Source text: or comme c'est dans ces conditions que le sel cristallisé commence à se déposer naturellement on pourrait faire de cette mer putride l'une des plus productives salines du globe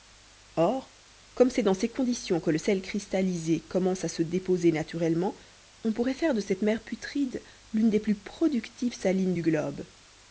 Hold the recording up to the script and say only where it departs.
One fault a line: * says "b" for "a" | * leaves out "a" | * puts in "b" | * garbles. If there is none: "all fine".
all fine